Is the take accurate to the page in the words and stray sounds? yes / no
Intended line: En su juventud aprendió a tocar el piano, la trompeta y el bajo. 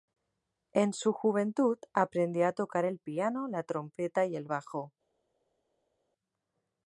yes